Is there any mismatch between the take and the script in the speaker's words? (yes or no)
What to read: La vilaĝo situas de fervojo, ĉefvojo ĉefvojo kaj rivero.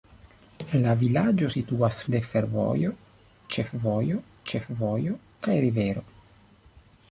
no